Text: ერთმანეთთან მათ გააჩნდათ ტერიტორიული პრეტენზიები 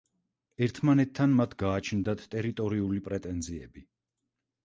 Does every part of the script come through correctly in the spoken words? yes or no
yes